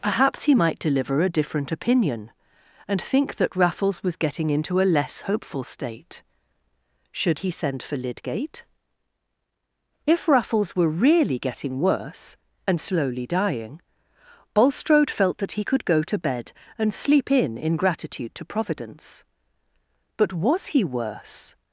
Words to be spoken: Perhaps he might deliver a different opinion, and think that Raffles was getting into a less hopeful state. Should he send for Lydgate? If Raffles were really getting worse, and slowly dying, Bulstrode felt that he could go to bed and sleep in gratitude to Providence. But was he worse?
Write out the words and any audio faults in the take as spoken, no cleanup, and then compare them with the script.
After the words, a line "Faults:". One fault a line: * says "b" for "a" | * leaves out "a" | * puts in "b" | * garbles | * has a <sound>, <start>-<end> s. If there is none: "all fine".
Perhaps he might deliver a different opinion, and think that Raffles was getting into a less hopeful state. Should he send for Lydgate? If Raffles were really getting worse, and slowly dying, Bulstrode felt that he could go to bed and sleep in in gratitude to Providence. But was he worse?
Faults:
* puts in "in"